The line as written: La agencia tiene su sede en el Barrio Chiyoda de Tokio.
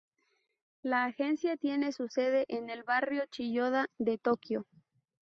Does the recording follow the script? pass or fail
pass